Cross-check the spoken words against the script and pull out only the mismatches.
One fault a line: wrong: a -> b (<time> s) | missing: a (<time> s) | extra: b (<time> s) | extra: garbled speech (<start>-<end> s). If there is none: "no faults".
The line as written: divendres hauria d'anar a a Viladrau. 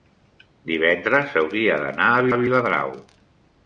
no faults